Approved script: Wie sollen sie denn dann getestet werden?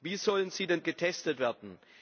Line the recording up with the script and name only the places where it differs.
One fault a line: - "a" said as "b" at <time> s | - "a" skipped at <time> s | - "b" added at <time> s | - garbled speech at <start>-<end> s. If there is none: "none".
- "dann" skipped at 0.8 s